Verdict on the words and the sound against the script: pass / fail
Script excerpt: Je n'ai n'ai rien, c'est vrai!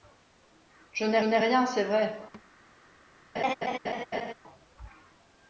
fail